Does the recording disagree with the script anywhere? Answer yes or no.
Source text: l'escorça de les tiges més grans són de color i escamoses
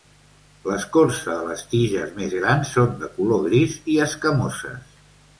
yes